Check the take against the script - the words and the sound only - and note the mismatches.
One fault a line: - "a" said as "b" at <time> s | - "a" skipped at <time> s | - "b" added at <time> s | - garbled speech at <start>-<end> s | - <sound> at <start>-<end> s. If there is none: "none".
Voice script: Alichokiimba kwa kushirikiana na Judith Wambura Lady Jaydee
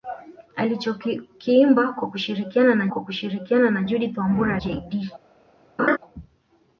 - "kwa kushirikiana na" added at 2.9 s
- "Lady" skipped at 4.6 s
- laugh at 5.8-6.0 s